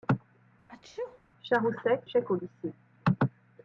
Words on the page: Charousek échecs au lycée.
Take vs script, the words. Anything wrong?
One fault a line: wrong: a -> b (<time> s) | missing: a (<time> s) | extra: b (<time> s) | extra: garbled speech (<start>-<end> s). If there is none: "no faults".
no faults